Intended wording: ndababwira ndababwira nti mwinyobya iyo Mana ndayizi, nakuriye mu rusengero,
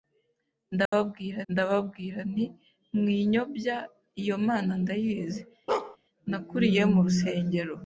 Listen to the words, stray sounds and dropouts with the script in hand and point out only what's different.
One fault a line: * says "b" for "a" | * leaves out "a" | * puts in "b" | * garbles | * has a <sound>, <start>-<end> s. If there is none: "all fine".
* has a dropout, 0.9-0.9 s
* has a bark, 5.7-6.0 s